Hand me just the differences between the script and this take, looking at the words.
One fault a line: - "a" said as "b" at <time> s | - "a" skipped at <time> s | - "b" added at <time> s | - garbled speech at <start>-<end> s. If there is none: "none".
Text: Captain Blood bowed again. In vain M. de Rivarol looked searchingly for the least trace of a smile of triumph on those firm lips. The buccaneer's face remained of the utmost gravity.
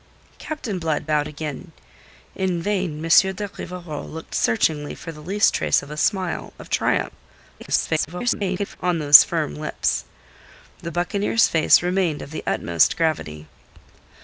- garbled speech at 7.6-8.8 s